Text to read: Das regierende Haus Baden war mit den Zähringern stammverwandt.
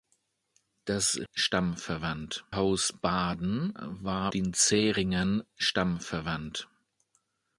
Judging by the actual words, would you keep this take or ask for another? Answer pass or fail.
fail